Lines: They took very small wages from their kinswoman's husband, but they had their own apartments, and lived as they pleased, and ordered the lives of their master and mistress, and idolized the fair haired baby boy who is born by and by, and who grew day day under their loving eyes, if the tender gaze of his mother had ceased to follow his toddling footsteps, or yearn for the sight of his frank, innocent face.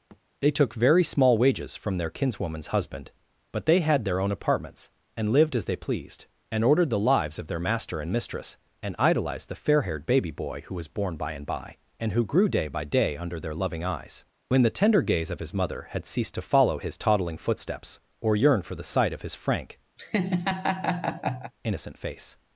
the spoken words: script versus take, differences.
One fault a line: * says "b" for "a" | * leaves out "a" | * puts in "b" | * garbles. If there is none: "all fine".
* says "was" for "is"
* puts in "by"
* says "when" for "if"